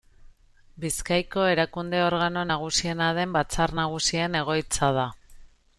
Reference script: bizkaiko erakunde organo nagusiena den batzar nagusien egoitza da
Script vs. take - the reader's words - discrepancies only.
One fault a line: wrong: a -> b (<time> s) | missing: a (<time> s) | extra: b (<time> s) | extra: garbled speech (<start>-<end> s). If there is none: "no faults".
no faults